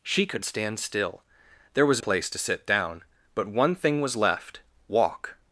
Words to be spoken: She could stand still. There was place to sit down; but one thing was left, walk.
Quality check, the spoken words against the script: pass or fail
pass